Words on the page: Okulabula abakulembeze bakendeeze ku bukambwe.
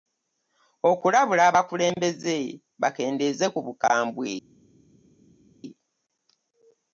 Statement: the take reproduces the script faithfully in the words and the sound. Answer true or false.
true